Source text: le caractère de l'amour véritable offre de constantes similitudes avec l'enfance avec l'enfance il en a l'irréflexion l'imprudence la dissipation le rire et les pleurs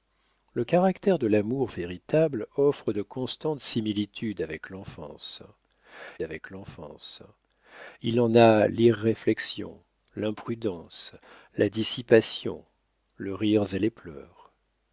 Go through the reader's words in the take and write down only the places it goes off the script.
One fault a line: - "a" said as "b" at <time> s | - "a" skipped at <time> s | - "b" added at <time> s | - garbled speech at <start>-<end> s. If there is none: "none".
none